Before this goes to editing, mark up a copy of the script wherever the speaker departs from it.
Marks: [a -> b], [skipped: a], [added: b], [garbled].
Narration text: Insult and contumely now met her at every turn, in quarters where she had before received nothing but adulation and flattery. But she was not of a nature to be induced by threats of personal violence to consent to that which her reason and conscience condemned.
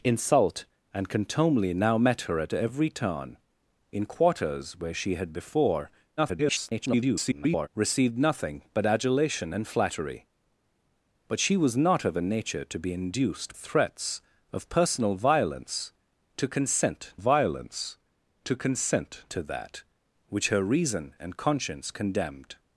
Insult and contumely now met her at every turn, in quarters where she had before [garbled] received nothing but adulation and flattery. But she was not of a nature to be induced [skipped: by] threats of personal violence to consent [added: violence to consent] to that which her reason and conscience condemned.